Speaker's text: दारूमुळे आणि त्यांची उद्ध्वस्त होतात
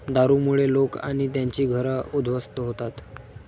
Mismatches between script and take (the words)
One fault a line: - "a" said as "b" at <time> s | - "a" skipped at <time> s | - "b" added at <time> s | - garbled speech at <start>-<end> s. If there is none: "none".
- "लोक" added at 0.7 s
- "घरं" added at 1.6 s